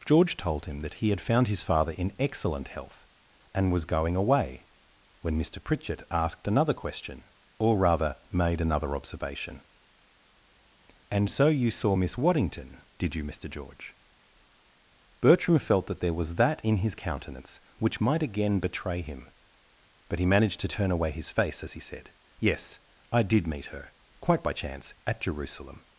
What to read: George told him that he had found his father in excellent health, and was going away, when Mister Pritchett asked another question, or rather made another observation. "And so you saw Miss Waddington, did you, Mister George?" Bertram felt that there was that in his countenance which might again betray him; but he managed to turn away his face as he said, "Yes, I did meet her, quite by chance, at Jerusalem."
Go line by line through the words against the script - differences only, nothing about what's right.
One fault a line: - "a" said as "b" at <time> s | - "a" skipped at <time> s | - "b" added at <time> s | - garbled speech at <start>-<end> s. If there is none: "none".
none